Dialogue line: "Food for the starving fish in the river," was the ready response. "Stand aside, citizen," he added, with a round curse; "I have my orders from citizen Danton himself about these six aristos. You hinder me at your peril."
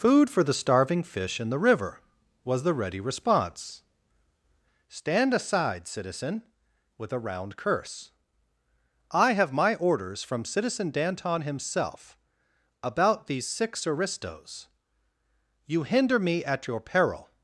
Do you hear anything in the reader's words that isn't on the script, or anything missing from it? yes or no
yes